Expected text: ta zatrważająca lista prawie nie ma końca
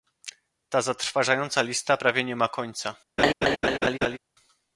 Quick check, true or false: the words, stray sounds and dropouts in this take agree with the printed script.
false